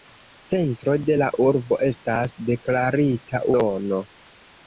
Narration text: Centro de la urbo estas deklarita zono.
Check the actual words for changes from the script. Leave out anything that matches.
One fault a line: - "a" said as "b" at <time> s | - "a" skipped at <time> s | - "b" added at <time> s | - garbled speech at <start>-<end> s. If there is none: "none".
none